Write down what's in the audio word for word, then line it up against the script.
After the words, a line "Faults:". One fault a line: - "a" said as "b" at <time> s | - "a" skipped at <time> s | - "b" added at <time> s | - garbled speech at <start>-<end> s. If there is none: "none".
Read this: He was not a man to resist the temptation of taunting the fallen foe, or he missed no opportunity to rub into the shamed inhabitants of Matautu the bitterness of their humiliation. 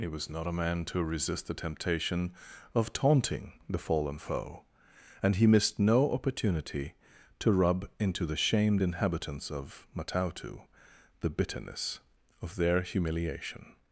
He was not a man to resist the temptation of taunting the fallen foe, and he missed no opportunity to rub into the shamed inhabitants of Matautu the bitterness of their humiliation.
Faults:
- "or" said as "and" at 5.2 s